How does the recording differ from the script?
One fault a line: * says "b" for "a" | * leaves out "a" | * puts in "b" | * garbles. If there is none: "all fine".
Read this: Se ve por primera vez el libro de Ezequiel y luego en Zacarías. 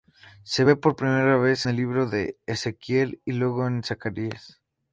all fine